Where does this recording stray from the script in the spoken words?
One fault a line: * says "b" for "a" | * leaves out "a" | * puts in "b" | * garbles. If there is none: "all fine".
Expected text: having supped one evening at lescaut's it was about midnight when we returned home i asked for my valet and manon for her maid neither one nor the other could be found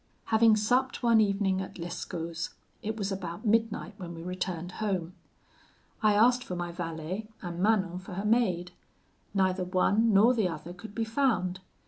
all fine